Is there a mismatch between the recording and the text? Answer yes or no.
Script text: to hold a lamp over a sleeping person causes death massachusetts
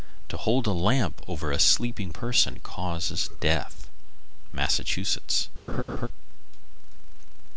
no